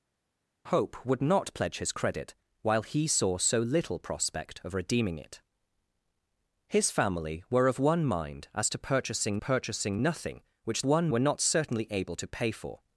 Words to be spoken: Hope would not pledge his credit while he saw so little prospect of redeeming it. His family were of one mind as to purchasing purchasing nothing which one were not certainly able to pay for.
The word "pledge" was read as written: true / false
true